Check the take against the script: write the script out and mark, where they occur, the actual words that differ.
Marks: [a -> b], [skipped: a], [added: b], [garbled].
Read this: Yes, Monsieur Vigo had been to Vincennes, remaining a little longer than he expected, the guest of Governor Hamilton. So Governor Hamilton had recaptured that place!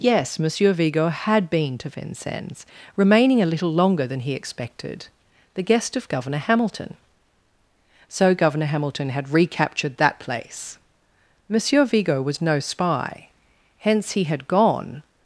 Yes, Monsieur Vigo had been to Vincennes, remaining a little longer than he expected, the guest of Governor Hamilton. So Governor Hamilton had recaptured that place! [added: Monsieur Vigo was no spy hence he had gone]